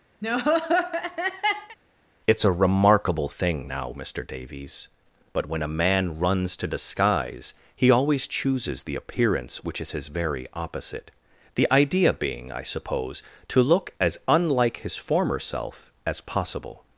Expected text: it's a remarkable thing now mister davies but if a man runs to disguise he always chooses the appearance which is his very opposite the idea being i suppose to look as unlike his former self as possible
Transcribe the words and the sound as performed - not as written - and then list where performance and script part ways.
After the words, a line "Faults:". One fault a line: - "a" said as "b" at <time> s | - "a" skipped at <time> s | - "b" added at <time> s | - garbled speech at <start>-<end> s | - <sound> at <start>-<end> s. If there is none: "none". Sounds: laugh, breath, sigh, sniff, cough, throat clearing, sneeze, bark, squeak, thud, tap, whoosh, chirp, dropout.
it's a remarkable thing now mister davies but when a man runs to disguise he always chooses the appearance which is his very opposite the idea being i suppose to look as unlike his former self as possible
Faults:
- laugh at 0.2-1.8 s
- "if" said as "when" at 5.4 s